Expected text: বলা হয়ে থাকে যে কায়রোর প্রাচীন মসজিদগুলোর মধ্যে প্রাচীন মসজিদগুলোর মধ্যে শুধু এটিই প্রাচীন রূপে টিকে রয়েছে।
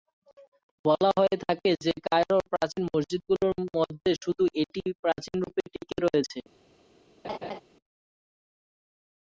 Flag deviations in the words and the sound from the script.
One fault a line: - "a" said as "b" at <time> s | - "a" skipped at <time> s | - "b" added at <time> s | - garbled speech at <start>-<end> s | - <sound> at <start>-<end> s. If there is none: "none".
- "প্রাচীন মসজিদগুলোর মধ্যে" skipped at 4.1 s
- laugh at 7.2-7.6 s